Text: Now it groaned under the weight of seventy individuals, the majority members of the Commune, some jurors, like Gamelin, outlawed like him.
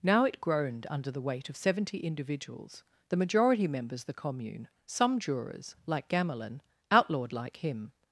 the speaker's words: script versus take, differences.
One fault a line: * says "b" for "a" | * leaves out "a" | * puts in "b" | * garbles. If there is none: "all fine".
* leaves out "of"